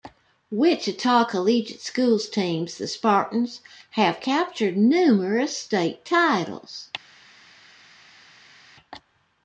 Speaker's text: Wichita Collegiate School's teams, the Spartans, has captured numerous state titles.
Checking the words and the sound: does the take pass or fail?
fail